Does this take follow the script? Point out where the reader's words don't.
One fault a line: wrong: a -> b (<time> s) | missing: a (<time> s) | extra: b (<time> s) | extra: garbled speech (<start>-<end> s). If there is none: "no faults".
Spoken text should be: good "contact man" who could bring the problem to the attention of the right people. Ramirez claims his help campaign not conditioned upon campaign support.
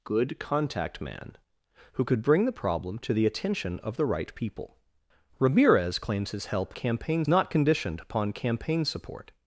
no faults